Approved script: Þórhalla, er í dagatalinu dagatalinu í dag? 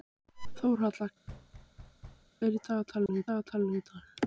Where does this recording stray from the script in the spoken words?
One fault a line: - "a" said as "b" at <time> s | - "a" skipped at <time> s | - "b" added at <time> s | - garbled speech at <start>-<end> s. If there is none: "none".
none